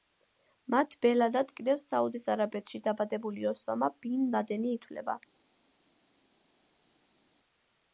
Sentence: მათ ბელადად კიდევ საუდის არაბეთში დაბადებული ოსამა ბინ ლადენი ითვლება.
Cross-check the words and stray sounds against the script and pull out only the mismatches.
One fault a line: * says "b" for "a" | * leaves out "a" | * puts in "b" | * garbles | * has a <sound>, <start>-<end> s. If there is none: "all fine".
all fine